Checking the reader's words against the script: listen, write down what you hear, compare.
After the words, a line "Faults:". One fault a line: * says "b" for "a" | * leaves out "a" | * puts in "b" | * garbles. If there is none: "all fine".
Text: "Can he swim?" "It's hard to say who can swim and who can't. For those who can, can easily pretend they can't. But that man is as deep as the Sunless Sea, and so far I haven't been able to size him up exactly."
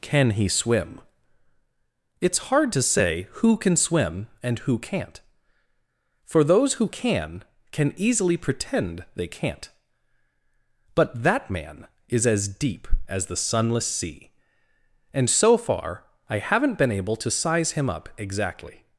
"Can he swim?" "It's hard to say who can swim and who can't. For those who can, can easily pretend they can't. But that man is as deep as the Sunless Sea, and so far I haven't been able to size him up exactly."
Faults:
all fine